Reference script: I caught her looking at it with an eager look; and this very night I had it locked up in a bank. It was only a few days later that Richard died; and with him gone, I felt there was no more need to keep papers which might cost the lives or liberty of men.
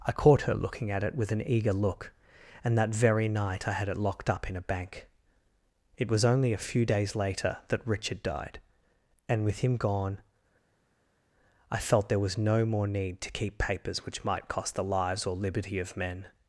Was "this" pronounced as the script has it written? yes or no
no